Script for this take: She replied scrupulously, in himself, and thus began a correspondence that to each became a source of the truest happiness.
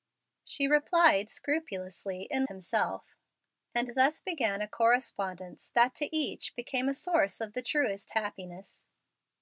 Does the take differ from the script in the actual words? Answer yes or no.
no